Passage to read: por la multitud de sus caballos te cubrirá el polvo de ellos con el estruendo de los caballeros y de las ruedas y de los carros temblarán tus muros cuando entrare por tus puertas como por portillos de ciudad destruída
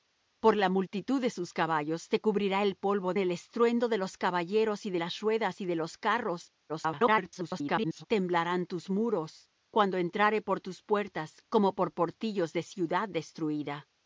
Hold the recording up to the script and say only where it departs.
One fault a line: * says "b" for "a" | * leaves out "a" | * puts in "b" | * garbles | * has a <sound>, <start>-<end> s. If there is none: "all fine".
* leaves out "de ellos con"
* garbles